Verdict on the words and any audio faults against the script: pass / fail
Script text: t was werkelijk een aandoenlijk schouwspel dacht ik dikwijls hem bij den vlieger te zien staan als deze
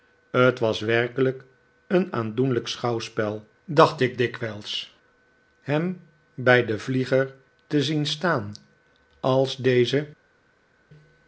pass